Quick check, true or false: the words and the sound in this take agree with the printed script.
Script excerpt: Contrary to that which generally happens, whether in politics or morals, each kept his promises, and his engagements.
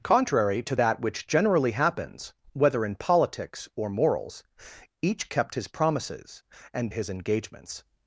true